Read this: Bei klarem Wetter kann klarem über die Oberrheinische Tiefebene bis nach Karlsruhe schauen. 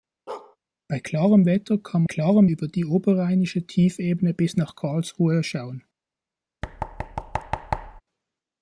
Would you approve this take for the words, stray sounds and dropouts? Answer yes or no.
no